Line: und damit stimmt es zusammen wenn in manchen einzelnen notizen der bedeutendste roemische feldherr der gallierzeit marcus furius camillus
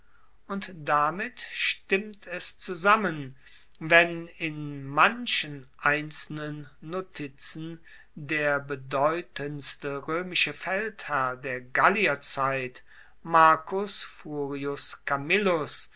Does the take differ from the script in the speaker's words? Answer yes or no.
no